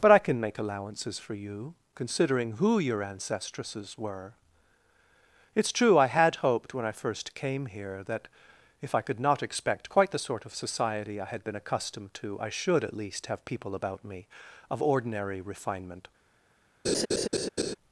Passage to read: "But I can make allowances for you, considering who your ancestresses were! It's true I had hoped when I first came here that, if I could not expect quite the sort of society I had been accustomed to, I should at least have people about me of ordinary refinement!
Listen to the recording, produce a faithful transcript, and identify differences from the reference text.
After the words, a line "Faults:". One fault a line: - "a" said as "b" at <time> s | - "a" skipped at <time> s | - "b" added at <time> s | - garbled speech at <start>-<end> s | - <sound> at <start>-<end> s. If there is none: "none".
"But I can make allowances for you, considering who your ancestresses were! It's true I had hoped when I first came here that, if I could not expect quite the sort of society I had been accustomed to, I should at least have people about me of ordinary refinement!
Faults:
- laugh at 16.8-17.7 s